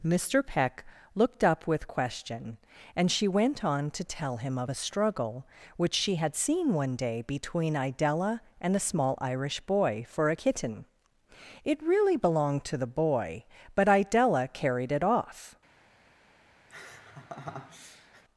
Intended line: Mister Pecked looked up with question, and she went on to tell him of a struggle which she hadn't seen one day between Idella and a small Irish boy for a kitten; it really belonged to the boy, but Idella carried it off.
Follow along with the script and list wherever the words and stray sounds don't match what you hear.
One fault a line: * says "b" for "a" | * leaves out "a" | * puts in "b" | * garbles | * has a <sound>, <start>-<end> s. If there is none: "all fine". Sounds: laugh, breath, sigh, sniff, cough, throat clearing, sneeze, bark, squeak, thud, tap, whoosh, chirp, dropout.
* says "Peck" for "Pecked"
* says "had" for "hadn't"
* has a laugh, 16.7-18.2 s